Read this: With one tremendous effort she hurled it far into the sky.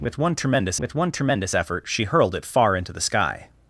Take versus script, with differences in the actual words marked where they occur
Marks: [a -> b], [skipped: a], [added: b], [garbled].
With one tremendous [added: with one tremendous] effort she hurled it far into the sky.